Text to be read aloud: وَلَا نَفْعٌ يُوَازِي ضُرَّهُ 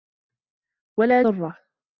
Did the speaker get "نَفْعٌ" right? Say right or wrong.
wrong